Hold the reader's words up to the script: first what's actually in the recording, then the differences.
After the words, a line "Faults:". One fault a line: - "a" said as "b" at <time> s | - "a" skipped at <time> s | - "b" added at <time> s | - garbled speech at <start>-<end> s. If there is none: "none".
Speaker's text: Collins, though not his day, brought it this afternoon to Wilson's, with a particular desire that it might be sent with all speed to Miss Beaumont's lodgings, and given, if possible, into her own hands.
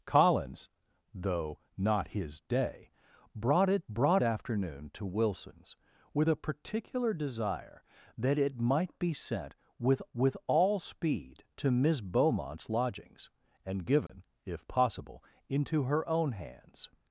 Collins, though not his day, brought it brought afternoon to Wilson's, with a particular desire that it might be sent with with all speed to Miss Beaumont's lodgings, and given, if possible, into her own hands.
Faults:
- "this" said as "brought" at 3.9 s
- "with" added at 10.1 s